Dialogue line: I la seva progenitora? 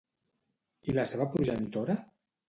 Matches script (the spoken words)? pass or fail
pass